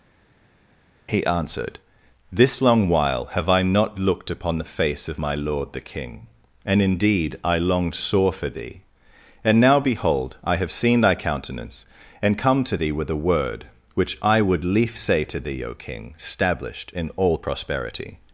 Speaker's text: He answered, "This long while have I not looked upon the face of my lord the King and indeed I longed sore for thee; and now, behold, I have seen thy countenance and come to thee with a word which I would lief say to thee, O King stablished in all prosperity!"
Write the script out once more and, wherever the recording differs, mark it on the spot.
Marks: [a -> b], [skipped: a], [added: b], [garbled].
He answered, "This long while have I not looked upon the face of my lord the King and indeed I longed sore for thee; and now, behold, I have seen thy countenance and come to thee with a word which I would lief say to thee, O King stablished in all prosperity!"